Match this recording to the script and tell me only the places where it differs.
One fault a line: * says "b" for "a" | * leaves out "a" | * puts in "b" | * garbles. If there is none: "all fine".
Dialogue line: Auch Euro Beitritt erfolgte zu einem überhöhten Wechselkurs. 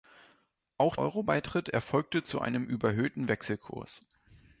all fine